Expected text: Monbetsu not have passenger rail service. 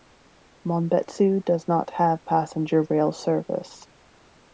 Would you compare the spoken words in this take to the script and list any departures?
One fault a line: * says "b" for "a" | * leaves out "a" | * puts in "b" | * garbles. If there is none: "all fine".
* puts in "does"